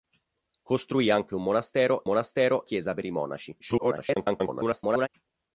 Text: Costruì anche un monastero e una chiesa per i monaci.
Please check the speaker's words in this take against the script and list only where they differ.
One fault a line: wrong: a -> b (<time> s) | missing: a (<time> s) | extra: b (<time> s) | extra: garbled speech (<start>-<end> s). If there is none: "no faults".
wrong: una -> monastero (2.0 s)
extra: garbled speech (3.6-5.1 s)